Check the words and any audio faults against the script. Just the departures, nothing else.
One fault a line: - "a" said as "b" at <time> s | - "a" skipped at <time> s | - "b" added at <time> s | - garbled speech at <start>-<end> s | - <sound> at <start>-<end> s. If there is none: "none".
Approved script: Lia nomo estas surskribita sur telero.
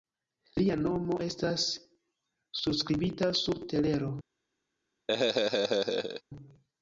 - laugh at 5.1-6.2 s